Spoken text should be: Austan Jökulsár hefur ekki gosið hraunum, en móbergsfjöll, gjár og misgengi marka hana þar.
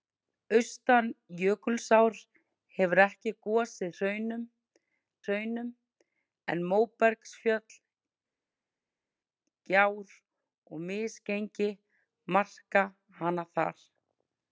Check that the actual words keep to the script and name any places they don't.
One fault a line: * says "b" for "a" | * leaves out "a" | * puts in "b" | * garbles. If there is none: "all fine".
* puts in "hraunum"